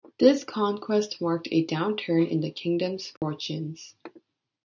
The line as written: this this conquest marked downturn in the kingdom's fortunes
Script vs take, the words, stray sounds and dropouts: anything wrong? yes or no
yes